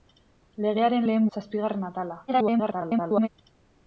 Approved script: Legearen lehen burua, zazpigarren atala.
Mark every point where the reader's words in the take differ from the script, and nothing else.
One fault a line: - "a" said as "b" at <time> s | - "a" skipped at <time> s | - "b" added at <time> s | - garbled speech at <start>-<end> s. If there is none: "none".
- "burua" skipped at 1.3 s
- garbled speech at 2.3-3.3 s